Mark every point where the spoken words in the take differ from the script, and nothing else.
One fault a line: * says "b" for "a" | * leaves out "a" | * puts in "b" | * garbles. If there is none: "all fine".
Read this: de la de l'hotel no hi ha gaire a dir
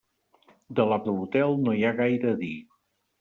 all fine